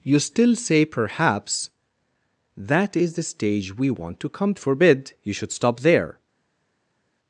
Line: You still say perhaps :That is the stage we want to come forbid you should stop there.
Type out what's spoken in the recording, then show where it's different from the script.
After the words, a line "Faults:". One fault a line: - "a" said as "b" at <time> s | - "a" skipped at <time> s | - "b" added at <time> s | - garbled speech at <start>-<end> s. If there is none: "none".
You still say perhaps :That is the stage we want to come forbid you should stop there.
Faults:
none